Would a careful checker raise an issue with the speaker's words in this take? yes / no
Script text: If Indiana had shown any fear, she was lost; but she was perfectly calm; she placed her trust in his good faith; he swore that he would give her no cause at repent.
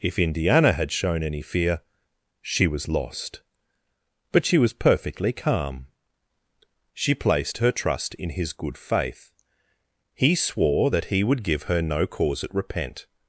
no